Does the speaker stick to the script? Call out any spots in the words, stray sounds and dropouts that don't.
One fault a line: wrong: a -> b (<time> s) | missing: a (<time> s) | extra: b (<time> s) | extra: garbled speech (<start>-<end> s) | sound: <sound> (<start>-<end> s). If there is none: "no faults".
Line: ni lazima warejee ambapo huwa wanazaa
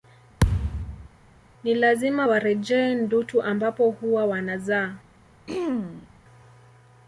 sound: thud (0.4-1.1 s)
extra: ndutu (2.9 s)
sound: throat clearing (5.5-6.1 s)